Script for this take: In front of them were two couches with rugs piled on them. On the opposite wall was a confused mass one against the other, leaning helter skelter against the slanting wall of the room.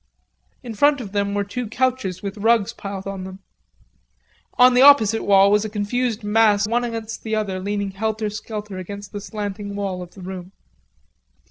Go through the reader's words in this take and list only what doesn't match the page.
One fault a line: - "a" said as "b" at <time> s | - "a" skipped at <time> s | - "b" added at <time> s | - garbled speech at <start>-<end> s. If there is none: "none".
none